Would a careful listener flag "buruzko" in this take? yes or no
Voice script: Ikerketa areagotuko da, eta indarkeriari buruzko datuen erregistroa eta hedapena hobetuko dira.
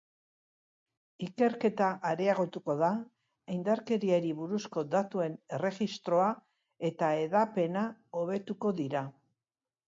no